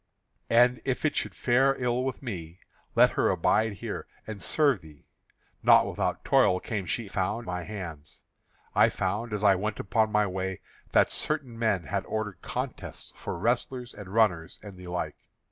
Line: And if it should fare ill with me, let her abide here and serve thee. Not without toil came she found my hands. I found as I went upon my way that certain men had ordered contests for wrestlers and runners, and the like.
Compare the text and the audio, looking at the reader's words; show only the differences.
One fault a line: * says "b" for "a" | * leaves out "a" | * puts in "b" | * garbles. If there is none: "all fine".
all fine